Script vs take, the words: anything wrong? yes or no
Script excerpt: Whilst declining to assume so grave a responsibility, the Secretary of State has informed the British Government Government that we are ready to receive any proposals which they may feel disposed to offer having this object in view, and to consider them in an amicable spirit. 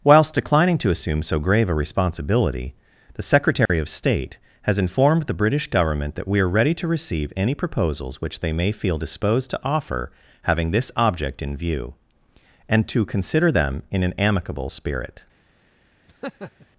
yes